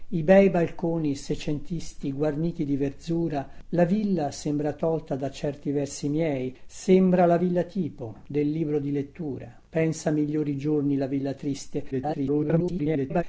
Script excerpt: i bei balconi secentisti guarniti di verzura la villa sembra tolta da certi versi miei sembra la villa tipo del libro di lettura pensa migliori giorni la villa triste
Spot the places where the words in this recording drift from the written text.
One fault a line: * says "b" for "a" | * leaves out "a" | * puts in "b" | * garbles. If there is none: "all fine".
* garbles